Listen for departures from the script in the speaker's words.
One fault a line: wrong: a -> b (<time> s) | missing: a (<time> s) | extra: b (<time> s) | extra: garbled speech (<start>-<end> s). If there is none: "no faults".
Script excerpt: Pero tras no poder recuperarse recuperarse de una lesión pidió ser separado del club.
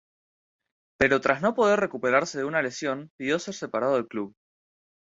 missing: recuperarse (2.4 s)